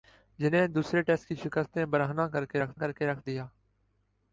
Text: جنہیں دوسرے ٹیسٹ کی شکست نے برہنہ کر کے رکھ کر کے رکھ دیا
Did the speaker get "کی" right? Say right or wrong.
right